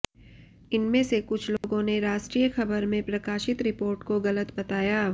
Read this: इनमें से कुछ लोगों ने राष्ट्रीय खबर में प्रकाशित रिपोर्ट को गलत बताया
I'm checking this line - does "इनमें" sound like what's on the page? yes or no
yes